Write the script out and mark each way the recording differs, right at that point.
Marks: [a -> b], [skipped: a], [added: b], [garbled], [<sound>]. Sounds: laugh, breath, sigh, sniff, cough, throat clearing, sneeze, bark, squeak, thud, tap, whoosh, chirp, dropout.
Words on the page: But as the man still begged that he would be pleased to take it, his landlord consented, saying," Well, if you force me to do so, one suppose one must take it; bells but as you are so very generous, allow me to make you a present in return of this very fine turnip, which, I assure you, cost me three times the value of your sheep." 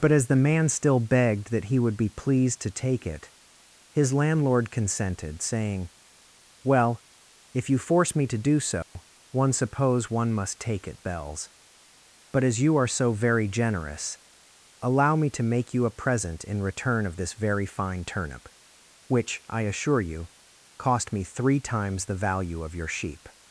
But as the man still begged that he would be pleased to take it, his landlord consented, saying," Well, if you force me to do so, [dropout] one suppose one must take it; bells but as you are so very generous, allow me to make you a present in return of this very fine turnip, which, I assure you, cost me three times the value of your sheep."